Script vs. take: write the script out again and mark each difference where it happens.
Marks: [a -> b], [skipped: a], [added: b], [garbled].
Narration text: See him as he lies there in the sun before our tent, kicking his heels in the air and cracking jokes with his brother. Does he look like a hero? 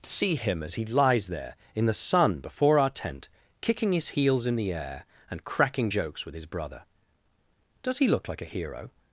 See him as he lies there in the sun before our tent, kicking his heels in the air and cracking jokes with his brother. Does he look like a hero?